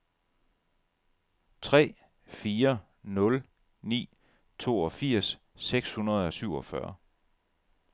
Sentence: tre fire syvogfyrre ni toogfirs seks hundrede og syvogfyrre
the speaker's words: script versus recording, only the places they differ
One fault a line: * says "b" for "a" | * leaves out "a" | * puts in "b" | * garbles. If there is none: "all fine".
* says "nul" for "syvogfyrre"